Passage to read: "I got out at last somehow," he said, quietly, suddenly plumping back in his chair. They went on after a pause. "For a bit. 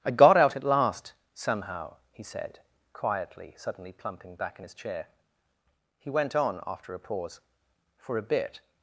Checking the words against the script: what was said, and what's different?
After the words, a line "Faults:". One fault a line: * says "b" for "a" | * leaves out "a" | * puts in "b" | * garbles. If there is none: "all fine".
"I got out at last somehow," he said, quietly, suddenly plumping back in his chair. He went on after a pause. "For a bit.
Faults:
* says "He" for "They"